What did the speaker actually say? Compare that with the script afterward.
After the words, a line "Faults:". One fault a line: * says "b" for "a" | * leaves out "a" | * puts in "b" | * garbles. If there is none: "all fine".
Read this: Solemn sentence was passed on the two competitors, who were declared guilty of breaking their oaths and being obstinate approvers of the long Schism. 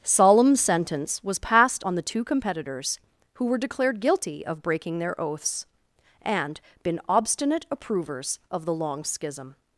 Solemn sentence was passed on the two competitors, who were declared guilty of breaking their oaths and been obstinate approvers of the long Schism.
Faults:
* says "been" for "being"